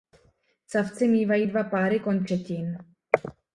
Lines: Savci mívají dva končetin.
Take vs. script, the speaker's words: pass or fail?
fail